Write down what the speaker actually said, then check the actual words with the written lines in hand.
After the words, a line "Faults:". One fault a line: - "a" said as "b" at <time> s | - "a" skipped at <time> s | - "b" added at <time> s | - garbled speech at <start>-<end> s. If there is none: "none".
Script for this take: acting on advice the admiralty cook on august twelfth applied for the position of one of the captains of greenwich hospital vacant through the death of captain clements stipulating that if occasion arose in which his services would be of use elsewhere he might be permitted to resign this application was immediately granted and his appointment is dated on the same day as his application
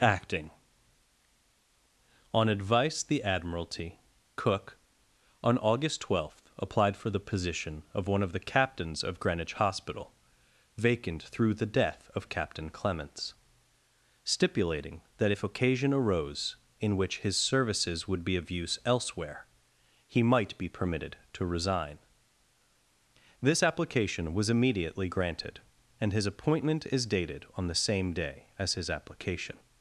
acting on advice the admiralty cook on august twelfth applied for the position of one of the captains of greenwich hospital vacant through the death of captain clements stipulating that if occasion arose in which his services would be of use elsewhere he might be permitted to resign this application was immediately granted and his appointment is dated on the same day as his application
Faults:
none